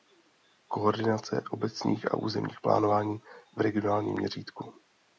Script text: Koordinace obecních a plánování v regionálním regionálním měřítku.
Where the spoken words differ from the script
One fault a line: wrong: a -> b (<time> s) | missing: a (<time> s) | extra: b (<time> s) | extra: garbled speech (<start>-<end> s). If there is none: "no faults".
extra: územních (2.2 s)
missing: regionálním (4.1 s)